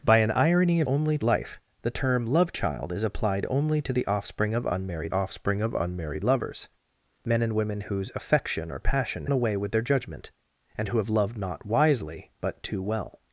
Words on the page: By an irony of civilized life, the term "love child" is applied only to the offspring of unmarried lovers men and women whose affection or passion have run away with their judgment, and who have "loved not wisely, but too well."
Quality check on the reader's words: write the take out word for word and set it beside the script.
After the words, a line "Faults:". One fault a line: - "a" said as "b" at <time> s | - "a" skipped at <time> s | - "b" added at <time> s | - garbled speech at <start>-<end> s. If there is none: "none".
By an irony of only life, the term "love child" is applied only to the offspring of unmarried offspring of unmarried lovers men and women whose affection or passion away with their judgment, and who have "loved not wisely, but too well."
Faults:
- "civilized" said as "only" at 0.9 s
- "offspring of unmarried" added at 5.1 s
- "have run" skipped at 9.3 s